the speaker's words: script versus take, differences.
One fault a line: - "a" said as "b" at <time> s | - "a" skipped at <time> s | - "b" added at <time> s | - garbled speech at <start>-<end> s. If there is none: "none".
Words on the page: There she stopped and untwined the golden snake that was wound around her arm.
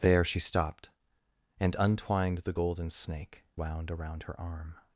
- "that was" skipped at 3.4 s